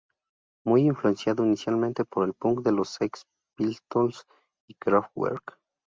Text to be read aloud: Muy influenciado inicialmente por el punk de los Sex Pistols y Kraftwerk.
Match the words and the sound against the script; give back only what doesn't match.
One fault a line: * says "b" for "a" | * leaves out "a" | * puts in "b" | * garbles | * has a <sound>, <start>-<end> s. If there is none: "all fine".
all fine